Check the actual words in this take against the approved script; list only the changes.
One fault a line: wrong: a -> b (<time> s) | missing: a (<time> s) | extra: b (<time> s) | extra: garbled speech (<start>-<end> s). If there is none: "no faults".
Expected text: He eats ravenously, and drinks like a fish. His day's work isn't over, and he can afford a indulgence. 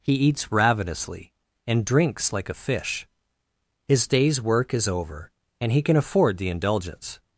wrong: isn't -> is (4.7 s)
wrong: a -> the (6.4 s)